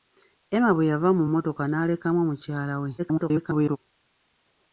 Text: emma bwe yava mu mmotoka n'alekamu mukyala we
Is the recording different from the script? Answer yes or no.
yes